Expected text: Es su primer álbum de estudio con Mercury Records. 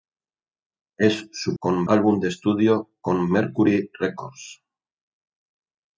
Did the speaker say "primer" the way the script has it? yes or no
no